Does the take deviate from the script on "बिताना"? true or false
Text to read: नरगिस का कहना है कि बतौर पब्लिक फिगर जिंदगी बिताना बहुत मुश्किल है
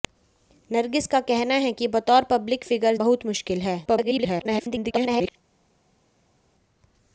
true